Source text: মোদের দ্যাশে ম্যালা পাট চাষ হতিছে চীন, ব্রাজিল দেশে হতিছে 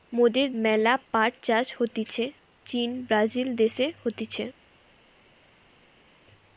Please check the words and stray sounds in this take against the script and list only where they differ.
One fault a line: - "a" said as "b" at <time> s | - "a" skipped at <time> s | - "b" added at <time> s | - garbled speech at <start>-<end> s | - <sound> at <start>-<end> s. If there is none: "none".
- "দ্যাশে" skipped at 0.5 s